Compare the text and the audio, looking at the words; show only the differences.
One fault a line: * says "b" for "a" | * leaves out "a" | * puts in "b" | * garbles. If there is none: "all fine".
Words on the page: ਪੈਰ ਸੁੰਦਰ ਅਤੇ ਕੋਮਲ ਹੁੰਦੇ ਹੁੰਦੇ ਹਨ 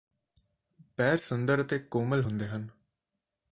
* leaves out "ਹੁੰਦੇ"